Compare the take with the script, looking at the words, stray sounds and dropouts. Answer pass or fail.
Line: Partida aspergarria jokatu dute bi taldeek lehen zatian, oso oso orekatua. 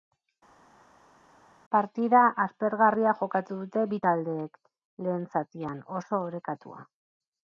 fail